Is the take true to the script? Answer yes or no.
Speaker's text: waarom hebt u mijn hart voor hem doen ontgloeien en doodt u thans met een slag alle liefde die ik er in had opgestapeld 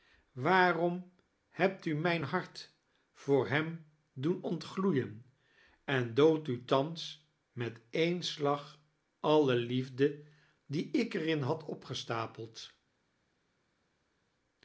yes